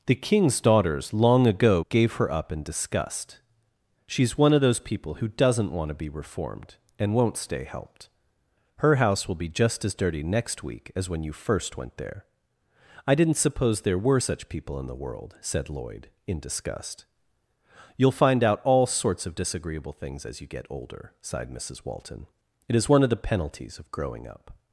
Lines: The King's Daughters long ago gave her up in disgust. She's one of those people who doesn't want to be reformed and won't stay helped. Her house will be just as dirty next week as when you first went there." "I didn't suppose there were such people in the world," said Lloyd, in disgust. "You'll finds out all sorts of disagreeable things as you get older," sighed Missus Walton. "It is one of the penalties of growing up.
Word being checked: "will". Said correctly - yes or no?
yes